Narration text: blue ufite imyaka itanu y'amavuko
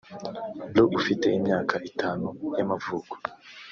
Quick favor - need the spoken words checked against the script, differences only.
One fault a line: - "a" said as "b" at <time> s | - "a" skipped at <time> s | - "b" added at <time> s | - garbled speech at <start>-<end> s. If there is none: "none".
none